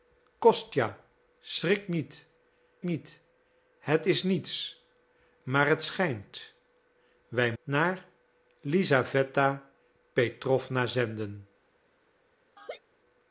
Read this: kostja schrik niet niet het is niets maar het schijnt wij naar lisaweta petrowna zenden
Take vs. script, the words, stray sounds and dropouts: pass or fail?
fail